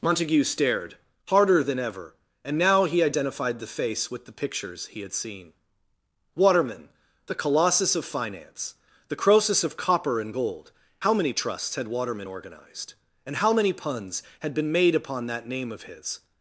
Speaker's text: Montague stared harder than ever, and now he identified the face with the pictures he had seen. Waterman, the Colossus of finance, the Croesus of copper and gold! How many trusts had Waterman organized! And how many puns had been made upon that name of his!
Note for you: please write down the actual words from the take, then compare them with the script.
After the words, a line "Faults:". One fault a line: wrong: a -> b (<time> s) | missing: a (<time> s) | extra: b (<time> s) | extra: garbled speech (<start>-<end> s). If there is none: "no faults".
Montague stared harder than ever, and now he identified the face with the pictures he had seen. Waterman, the Colossus of finance, the Croesus of copper and gold! How many trusts had Waterman organized! And how many puns had been made upon that name of his!
Faults:
no faults